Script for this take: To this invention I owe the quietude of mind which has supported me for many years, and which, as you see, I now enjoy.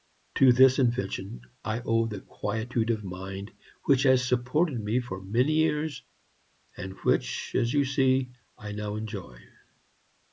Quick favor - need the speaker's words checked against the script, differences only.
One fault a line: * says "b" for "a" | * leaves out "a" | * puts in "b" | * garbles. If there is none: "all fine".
all fine